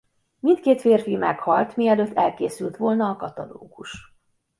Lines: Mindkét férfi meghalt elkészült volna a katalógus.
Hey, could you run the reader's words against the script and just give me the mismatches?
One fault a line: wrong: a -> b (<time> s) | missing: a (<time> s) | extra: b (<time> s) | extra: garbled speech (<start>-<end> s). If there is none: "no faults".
extra: mielőtt (1.8 s)